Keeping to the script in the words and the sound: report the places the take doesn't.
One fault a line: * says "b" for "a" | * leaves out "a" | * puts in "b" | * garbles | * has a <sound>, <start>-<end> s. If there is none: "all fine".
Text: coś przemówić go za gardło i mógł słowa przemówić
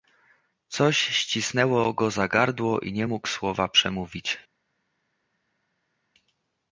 * says "ścisnęło" for "przemówić"
* puts in "nie"